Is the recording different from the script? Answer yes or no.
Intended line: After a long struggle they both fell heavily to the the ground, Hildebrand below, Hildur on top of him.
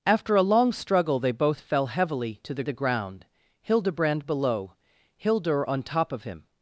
no